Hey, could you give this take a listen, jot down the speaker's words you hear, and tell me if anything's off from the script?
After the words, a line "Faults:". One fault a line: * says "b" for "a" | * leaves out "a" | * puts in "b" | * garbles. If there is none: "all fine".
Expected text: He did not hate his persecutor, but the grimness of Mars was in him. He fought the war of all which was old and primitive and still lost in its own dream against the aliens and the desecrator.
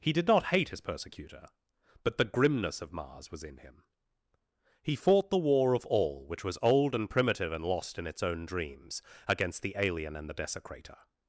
He did not hate his persecutor, but the grimness of Mars was in him. He fought the war of all which was old and primitive and lost in its own dreams against the alien and the desecrator.
Faults:
* leaves out "still"
* says "dreams" for "dream"
* says "alien" for "aliens"